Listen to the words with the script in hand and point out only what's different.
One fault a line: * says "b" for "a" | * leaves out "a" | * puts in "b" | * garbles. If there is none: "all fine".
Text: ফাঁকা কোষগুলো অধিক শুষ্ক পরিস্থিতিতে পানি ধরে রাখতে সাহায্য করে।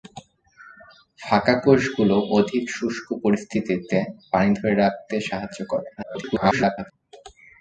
* garbles